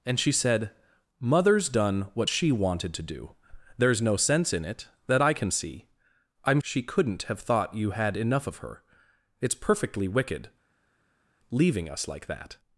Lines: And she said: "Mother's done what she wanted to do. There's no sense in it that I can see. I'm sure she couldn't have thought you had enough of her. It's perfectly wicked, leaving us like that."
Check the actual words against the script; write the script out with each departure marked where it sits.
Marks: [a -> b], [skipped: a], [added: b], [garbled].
And she said: "Mother's done what she wanted to do. There's no sense in it that I can see. I'm [skipped: sure] she couldn't have thought you had enough of her. It's perfectly wicked, leaving us like that."